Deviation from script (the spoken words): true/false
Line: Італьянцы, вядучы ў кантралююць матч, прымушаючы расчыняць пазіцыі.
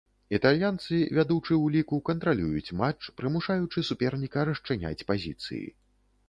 true